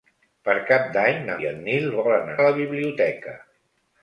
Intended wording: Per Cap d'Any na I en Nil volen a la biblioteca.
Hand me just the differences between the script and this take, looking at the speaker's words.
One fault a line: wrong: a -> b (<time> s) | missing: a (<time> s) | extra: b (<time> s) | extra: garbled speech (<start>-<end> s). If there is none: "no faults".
no faults